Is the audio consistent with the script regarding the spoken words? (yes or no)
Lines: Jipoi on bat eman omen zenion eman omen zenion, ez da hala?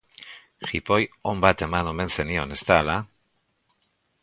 no